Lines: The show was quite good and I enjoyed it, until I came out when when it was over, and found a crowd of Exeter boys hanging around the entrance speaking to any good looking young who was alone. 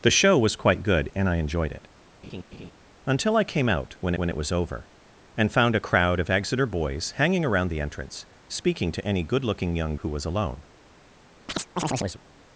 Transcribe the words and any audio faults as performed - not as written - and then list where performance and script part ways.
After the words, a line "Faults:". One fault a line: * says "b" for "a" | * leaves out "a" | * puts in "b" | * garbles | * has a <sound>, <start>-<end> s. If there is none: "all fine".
The show was quite good and I enjoyed it, until I came out when when it was over, and found a crowd of Exeter boys hanging around the entrance speaking to any good looking young who was alone.
Faults:
* has a laugh, 2.2-2.7 s
* has a chirp, 11.5-12.2 s